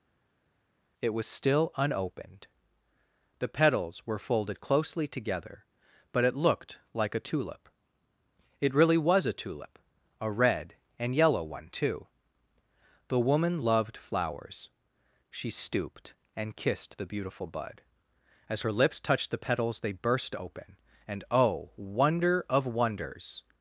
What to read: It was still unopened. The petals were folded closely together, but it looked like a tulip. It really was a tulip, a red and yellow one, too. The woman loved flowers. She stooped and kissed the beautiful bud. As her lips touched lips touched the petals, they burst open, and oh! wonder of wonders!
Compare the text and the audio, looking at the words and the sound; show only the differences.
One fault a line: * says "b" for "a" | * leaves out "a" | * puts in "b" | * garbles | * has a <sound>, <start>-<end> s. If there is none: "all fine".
* leaves out "lips touched"